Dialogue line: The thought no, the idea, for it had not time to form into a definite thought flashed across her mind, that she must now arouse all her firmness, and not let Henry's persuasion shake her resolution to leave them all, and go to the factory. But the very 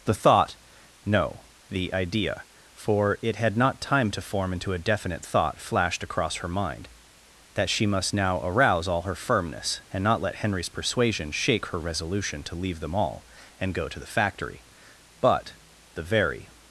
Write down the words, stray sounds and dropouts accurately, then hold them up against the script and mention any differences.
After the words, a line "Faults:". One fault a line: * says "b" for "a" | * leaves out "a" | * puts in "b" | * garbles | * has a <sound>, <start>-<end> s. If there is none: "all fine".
The thought no, the idea, for it had not time to form into a definite thought flashed across her mind, that she must now arouse all her firmness, and not let Henry's persuasion shake her resolution to leave them all, and go to the factory. But the very
Faults:
all fine